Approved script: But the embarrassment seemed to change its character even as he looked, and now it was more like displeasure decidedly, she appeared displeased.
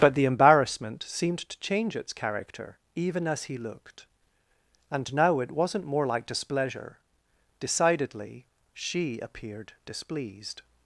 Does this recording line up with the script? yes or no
no